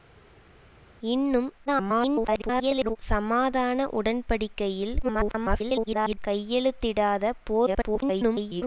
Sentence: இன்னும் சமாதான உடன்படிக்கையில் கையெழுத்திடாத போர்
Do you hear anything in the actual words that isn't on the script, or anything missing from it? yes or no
yes